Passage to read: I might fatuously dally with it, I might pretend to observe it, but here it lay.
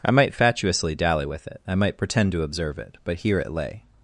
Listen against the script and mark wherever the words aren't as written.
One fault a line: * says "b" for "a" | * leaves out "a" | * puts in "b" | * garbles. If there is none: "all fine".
all fine